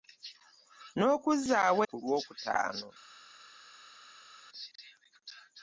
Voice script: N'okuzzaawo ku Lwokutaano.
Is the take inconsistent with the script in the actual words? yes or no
no